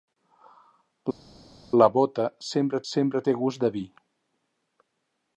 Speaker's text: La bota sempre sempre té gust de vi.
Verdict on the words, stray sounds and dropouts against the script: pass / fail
pass